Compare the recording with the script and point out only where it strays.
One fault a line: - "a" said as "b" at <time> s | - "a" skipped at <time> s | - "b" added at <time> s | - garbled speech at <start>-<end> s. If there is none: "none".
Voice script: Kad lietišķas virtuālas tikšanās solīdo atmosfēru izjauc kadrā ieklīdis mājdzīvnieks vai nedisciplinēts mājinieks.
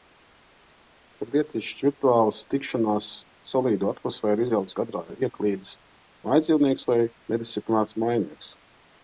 none